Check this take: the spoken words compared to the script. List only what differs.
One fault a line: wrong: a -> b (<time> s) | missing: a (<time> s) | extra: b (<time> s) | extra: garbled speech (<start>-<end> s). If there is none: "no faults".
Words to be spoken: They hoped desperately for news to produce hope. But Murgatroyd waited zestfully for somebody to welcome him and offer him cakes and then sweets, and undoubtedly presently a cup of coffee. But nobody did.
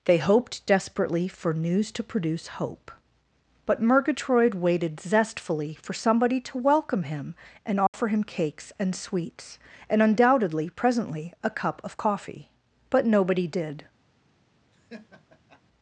missing: then (8.9 s)